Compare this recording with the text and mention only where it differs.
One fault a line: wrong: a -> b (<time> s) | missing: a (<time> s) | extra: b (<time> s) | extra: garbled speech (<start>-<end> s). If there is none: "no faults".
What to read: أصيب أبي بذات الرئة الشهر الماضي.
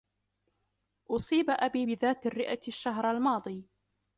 no faults